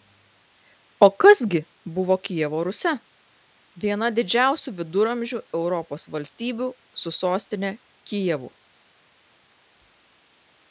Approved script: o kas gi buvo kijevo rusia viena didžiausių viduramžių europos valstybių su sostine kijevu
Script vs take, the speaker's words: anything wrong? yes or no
no